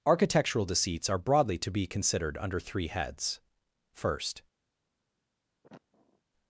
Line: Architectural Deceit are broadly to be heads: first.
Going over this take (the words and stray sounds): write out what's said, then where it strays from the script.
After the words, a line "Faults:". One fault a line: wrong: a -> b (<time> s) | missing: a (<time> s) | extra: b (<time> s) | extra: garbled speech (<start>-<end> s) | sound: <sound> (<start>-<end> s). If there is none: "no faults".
Architectural Deceits are broadly to be considered under three heads: first.
Faults:
wrong: Deceit -> Deceits (0.7 s)
extra: considered under three (1.9 s)
sound: sniff (5.6-6.2 s)